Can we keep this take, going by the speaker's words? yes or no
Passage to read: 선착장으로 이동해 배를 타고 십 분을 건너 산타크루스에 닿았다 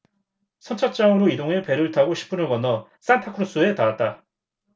yes